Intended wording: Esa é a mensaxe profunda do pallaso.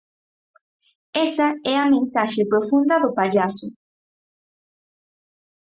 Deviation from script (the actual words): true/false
false